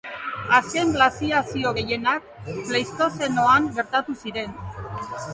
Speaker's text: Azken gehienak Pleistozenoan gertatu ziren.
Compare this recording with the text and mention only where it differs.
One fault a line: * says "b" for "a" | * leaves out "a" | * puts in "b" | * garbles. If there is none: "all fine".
* puts in "glaziazio"